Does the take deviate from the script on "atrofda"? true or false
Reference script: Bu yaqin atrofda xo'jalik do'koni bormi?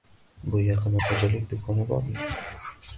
true